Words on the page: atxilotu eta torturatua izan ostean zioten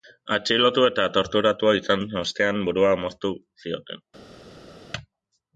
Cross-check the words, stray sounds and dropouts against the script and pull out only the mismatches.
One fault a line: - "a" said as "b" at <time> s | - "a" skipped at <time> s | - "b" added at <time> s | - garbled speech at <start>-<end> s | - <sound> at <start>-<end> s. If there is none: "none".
- "burua moztu" added at 2.7 s